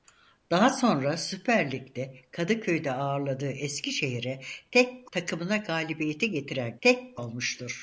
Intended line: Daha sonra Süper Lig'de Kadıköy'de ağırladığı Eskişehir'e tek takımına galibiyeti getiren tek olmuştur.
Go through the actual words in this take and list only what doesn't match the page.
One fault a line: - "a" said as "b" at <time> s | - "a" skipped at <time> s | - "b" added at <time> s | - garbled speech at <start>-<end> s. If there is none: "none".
none